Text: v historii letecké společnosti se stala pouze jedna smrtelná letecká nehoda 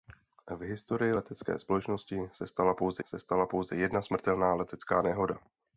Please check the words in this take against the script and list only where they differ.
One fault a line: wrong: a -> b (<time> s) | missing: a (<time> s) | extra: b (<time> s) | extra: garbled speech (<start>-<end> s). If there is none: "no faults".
extra: se stala pouze (3.0 s)